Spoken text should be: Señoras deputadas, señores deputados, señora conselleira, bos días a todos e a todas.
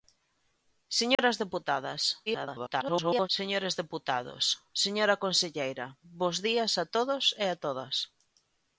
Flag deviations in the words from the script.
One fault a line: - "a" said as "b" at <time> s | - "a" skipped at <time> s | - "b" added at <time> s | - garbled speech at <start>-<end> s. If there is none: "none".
- garbled speech at 2.3-3.3 s